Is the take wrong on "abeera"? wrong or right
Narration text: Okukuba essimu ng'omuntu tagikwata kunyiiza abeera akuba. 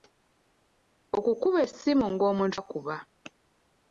wrong